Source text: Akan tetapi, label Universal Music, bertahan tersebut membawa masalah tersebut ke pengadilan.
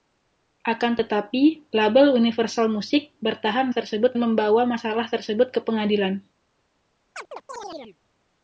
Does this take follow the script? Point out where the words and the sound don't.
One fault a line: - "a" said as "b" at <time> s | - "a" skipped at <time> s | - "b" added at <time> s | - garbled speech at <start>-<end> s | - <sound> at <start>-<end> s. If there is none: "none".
- chirp at 7.1-8.0 s